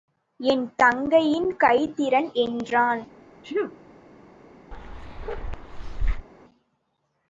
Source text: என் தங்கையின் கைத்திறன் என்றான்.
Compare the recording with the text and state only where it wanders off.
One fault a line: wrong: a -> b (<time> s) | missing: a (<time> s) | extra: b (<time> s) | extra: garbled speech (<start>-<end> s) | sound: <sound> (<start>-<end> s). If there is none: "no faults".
sound: sneeze (3.4-3.8 s)
sound: bark (4.7-6.3 s)